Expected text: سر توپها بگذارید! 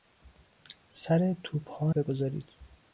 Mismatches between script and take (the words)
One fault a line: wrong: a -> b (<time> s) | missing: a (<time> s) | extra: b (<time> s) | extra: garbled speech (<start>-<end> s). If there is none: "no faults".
no faults